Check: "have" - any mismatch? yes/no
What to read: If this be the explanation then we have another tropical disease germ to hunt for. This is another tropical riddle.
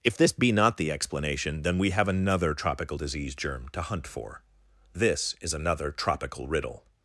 no